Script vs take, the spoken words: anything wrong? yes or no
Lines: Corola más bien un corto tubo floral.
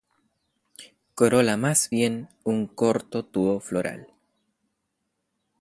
no